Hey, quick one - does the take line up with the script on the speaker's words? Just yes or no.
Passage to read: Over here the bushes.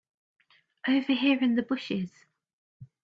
no